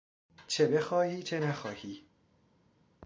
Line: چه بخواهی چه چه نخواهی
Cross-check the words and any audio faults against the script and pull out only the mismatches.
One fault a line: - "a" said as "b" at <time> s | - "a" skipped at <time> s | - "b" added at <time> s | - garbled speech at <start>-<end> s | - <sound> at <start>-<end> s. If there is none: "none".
- "چه" skipped at 1.4 s